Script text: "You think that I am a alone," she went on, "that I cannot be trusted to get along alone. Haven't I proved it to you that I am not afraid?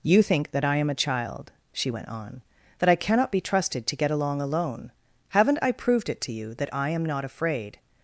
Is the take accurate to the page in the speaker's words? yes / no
no